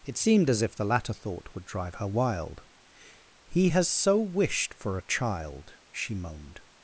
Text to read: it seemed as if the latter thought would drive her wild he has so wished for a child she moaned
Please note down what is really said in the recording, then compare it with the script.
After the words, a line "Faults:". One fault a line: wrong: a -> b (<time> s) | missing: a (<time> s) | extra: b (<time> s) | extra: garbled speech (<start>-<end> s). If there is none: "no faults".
it seemed as if the latter thought would drive her wild he has so wished for a child she moaned
Faults:
no faults